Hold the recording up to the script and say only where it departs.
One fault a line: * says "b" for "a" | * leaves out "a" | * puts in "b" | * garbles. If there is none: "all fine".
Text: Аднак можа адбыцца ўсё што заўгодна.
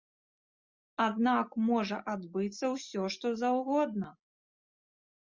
all fine